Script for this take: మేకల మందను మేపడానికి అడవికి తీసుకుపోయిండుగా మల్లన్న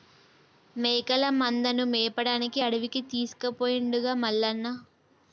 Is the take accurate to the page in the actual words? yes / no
yes